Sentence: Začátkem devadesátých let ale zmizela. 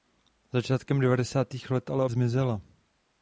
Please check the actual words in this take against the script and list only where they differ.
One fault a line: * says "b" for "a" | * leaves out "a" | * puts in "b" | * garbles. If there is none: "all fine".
all fine